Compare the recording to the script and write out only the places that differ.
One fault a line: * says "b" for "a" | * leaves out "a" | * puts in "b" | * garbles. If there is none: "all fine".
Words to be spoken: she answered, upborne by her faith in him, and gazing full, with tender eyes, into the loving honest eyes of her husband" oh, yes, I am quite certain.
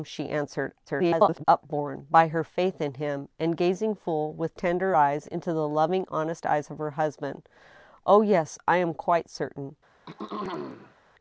* garbles